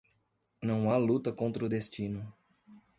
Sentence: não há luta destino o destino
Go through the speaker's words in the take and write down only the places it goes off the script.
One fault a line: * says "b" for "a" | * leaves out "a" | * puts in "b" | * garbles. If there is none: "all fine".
* says "contra" for "destino"